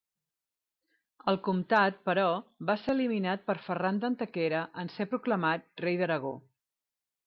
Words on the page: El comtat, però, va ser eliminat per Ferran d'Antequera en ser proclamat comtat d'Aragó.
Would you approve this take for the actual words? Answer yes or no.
no